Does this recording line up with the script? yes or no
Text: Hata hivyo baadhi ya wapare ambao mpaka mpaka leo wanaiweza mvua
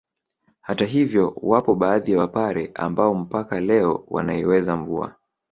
no